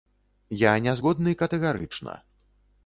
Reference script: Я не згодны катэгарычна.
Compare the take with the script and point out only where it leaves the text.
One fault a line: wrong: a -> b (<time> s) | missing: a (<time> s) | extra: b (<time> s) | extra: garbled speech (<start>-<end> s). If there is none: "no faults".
no faults